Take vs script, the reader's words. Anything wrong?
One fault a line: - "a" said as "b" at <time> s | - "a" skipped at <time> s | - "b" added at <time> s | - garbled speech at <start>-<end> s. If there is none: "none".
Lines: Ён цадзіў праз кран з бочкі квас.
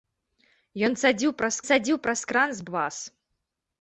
- "цадзіў праз" added at 1.7 s
- "бочкі" skipped at 2.7 s